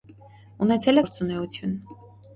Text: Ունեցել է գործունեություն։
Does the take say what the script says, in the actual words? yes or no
yes